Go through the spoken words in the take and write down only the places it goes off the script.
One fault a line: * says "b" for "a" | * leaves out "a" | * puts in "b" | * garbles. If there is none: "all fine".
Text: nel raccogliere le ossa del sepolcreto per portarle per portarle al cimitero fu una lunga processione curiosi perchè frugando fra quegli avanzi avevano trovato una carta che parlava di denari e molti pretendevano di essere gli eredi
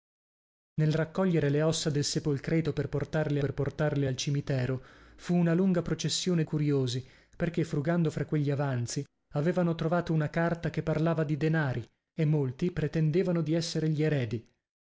all fine